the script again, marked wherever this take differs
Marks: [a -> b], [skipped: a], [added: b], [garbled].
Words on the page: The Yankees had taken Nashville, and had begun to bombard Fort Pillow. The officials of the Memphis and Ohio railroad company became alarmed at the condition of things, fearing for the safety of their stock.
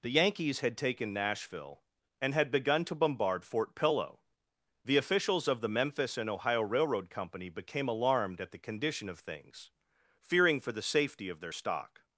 The Yankees had taken Nashville, and had begun to bombard Fort Pillow. The officials of the Memphis and Ohio railroad company became alarmed at the condition of things, fearing for the safety of their stock.